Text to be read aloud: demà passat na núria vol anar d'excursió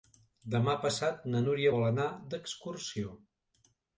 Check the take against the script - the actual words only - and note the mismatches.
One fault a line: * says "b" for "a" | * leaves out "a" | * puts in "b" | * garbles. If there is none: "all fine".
all fine